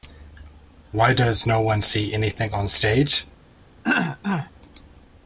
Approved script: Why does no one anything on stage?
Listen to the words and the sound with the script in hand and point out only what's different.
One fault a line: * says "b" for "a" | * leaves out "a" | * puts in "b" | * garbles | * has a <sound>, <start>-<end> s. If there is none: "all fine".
* puts in "see"
* has a throat clearing, 3.8-4.5 s